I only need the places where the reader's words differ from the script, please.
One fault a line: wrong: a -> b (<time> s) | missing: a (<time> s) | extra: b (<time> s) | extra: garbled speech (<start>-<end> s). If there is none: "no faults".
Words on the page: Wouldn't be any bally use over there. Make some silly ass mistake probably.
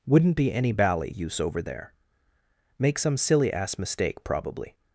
no faults